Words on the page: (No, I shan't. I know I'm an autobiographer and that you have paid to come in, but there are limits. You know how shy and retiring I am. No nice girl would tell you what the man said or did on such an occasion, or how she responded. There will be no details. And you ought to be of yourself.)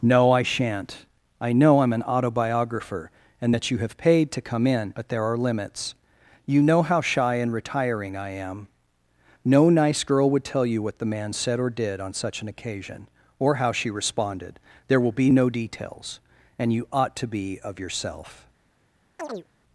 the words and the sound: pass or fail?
fail